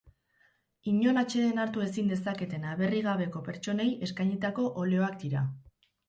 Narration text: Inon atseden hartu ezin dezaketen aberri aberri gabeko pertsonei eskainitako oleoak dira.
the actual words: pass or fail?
fail